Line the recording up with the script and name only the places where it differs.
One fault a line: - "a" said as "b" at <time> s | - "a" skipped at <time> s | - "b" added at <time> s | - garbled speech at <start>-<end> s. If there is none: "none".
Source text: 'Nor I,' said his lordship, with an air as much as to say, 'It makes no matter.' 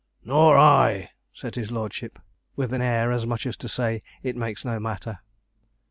none